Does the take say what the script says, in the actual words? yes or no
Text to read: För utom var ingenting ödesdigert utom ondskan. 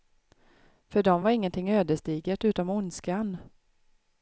no